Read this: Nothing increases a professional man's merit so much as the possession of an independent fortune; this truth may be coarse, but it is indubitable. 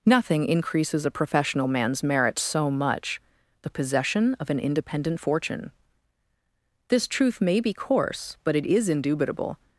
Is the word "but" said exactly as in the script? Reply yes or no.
yes